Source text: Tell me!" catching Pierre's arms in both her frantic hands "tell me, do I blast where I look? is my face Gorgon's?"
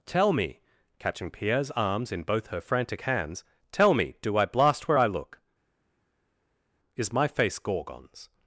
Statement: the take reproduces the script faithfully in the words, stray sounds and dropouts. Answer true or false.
true